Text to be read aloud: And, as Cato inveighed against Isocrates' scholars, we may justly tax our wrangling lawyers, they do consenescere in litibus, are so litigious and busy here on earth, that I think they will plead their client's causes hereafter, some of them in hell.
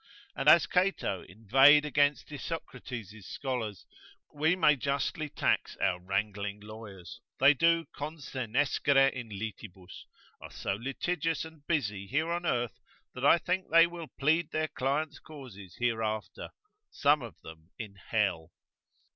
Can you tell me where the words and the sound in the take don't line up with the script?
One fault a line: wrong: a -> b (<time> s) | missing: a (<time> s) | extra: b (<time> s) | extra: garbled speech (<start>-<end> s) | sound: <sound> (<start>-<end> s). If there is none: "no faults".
no faults